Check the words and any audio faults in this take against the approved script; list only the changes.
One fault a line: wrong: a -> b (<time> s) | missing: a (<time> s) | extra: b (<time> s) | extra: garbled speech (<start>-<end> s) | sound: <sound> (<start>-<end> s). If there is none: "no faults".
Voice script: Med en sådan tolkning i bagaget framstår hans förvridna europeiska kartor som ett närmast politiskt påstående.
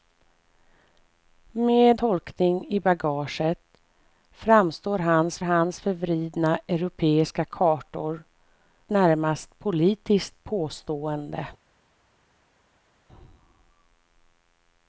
missing: en sådan (2.0 s)
extra: hans (5.4 s)
missing: som ett (8.2 s)